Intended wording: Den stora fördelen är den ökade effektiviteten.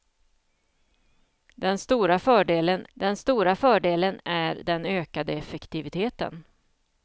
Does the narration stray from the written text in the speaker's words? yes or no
yes